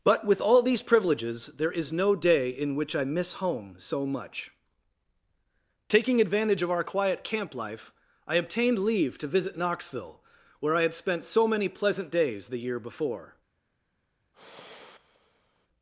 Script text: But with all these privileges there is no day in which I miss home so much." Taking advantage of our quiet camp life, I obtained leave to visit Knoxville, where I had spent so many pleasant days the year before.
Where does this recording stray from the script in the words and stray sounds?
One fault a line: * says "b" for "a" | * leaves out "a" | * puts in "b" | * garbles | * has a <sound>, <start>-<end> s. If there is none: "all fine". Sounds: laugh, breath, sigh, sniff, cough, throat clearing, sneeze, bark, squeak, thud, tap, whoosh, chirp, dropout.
* has a sigh, 14.3-15.7 s